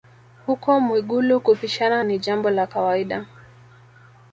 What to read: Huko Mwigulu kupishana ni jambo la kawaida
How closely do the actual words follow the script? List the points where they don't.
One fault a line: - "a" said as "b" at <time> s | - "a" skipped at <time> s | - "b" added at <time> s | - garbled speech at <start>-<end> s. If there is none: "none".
none